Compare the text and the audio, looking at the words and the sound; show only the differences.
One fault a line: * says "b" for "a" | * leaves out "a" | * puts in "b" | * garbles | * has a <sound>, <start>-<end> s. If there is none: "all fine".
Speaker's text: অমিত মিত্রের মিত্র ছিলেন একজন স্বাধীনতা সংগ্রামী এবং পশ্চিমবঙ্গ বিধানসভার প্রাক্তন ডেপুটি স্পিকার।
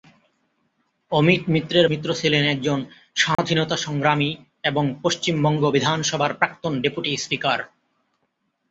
* has a dropout, 3.3-3.4 s